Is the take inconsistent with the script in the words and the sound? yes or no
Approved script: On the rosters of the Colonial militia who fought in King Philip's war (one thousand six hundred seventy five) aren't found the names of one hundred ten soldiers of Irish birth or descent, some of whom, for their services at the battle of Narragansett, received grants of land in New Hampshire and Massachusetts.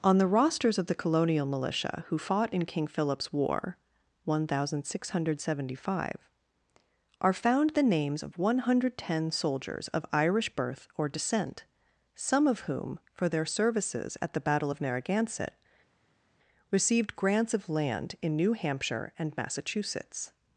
yes